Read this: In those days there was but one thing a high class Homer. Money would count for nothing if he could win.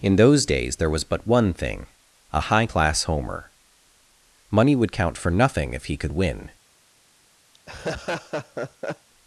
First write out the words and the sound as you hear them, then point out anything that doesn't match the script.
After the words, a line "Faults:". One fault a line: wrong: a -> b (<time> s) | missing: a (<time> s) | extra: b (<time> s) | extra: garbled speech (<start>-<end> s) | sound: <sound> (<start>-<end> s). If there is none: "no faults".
In those days there was but one thing a high class Homer. Money would count for nothing if he could win.
Faults:
sound: laugh (7.5-9.1 s)